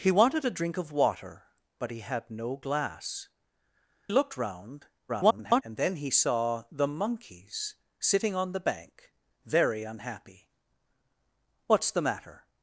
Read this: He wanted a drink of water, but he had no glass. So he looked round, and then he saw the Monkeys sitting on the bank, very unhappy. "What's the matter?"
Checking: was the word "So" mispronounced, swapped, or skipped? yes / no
yes